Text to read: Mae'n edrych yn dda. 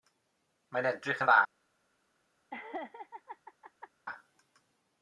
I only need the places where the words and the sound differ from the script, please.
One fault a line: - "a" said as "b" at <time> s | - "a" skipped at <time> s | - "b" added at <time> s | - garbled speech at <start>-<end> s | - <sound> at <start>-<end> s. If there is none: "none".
- laugh at 2.5-3.9 s